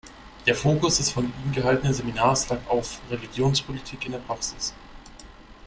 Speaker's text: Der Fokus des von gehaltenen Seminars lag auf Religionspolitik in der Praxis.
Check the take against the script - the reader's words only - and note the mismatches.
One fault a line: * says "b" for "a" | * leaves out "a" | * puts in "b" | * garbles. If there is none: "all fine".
* puts in "ihm"